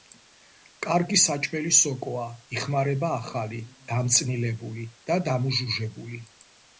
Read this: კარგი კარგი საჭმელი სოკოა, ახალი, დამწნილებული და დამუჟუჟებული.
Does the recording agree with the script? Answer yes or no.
no